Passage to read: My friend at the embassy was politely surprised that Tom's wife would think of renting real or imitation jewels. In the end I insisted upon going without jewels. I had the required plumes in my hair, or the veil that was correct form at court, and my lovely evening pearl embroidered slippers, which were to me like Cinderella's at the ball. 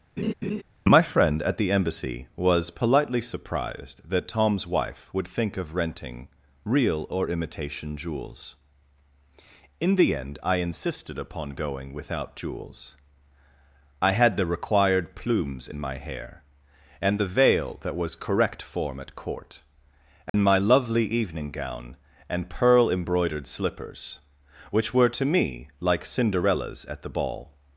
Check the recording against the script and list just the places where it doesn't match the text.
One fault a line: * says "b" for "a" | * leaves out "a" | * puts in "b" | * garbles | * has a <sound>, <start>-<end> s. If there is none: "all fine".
* has a laugh, 0.2-0.6 s
* says "and" for "or"
* has a dropout, 20.3-20.3 s
* puts in "gown and"